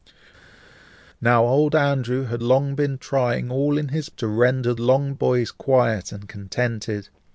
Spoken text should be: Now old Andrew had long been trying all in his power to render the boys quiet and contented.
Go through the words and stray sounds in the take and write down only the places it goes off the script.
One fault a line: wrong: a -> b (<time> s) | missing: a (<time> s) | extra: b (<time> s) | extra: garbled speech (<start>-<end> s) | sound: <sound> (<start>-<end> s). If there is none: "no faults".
missing: power (4.1 s)
wrong: the -> long (4.8 s)